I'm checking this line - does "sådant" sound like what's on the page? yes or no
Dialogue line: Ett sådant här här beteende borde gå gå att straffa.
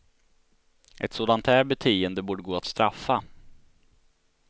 yes